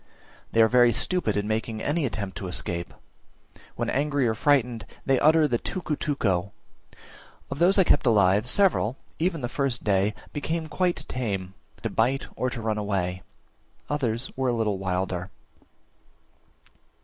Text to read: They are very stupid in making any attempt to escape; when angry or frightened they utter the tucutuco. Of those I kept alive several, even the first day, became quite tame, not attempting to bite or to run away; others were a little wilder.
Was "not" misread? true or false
true